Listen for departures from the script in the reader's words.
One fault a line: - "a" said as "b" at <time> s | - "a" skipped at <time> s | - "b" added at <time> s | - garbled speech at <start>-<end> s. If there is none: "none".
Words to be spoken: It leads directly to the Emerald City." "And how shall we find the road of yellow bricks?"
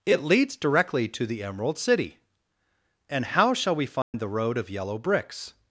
none